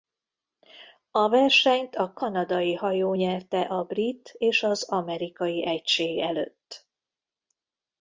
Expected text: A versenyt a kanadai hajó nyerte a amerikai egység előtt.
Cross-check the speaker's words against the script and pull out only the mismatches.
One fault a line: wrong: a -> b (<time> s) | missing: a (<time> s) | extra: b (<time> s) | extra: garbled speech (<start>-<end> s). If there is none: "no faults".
extra: brit és az (3.8 s)